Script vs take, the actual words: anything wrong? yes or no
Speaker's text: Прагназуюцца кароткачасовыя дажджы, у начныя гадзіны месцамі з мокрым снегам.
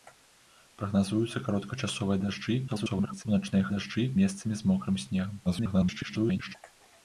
yes